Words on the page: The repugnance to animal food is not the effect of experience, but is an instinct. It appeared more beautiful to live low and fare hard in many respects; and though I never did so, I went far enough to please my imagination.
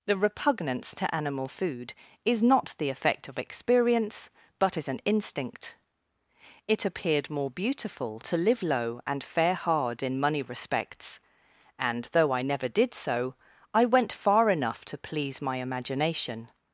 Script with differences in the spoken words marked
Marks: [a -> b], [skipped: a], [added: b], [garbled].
The repugnance to animal food is not the effect of experience, but is an instinct. It appeared more beautiful to live low and fare hard in [many -> money] respects; and though I never did so, I went far enough to please my imagination.